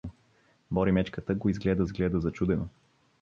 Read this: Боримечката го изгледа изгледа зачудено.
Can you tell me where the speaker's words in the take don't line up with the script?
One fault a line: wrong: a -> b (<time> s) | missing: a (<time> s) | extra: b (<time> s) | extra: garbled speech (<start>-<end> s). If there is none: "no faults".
no faults